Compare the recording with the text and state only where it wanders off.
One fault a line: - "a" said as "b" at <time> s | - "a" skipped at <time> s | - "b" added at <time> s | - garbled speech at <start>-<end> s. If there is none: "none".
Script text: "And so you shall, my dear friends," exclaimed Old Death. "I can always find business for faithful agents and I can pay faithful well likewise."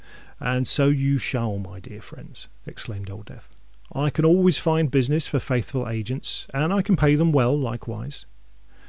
- "faithful" said as "them" at 7.2 s